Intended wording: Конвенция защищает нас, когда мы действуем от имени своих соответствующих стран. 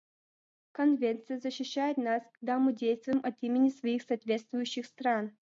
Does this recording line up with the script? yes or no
yes